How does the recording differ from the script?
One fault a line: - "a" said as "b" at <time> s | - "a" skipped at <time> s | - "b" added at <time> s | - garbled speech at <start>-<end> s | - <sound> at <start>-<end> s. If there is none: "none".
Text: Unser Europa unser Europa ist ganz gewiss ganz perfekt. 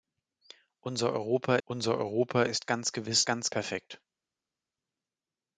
none